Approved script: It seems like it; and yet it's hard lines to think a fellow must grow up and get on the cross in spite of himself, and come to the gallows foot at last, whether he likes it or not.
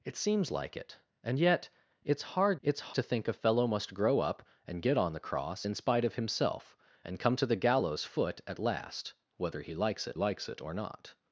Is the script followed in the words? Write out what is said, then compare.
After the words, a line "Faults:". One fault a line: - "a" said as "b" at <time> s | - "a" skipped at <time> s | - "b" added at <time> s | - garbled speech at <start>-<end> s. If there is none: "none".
It seems like it; and yet it's hard it's to think a fellow must grow up and get on the cross in spite of himself, and come to the gallows foot at last, whether he likes it likes it or not.
Faults:
- "lines" said as "it's" at 2.6 s
- "likes it" added at 10.1 s